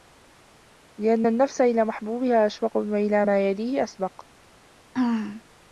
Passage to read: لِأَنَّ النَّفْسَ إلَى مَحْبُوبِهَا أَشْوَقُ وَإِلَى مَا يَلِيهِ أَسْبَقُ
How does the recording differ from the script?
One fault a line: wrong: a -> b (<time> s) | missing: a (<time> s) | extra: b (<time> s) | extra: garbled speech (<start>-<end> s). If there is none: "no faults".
no faults